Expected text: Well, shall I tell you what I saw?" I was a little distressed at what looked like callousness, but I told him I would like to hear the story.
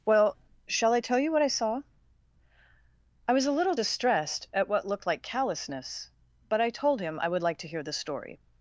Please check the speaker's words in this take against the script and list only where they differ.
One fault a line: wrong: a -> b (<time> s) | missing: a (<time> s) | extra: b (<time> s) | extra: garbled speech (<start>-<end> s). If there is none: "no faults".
no faults